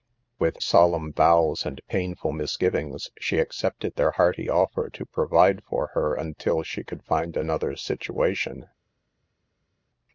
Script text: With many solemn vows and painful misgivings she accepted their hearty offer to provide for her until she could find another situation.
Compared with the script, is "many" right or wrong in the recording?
wrong